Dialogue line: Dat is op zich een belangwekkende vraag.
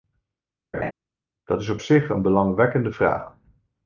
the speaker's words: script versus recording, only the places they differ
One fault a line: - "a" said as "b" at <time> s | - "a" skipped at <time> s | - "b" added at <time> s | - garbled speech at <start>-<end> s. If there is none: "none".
none